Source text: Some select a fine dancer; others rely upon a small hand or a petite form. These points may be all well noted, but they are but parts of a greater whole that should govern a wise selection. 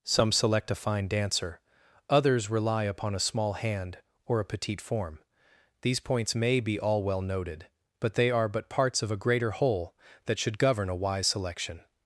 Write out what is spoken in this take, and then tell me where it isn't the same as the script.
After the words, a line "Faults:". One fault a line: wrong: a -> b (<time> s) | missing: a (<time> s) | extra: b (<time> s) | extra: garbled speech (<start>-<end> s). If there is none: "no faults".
Some select a fine dancer; others rely upon a small hand or a petite form. These points may be all well noted, but they are but parts of a greater whole that should govern a wise selection.
Faults:
no faults